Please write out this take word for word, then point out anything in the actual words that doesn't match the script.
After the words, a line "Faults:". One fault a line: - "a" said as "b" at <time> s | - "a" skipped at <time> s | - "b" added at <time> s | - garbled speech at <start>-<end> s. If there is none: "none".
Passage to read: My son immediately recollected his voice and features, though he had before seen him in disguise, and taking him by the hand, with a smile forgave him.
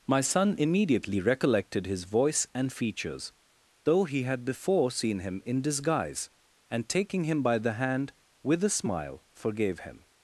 My son immediately recollected his voice and features, though he had before seen him in disguise, and taking him by the hand, with a smile forgave him.
Faults:
none